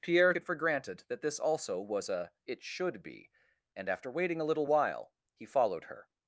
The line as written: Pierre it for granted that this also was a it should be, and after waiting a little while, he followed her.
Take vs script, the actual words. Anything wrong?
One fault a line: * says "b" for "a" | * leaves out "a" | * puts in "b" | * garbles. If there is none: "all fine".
all fine